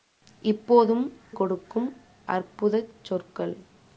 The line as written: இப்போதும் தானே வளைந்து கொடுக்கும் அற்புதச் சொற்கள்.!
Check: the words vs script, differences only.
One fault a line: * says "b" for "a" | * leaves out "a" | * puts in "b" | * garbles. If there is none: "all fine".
* leaves out "தானே வளைந்து"